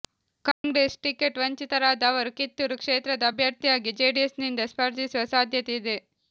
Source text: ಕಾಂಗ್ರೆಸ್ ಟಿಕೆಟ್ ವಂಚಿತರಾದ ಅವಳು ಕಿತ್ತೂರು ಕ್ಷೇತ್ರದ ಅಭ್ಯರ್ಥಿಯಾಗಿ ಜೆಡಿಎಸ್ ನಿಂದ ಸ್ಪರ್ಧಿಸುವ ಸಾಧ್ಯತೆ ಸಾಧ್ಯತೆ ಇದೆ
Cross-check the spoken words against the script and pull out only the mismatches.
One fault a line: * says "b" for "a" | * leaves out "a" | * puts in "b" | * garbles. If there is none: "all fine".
* says "ಅವರು" for "ಅವಳು"
* leaves out "ಸಾಧ್ಯತೆ"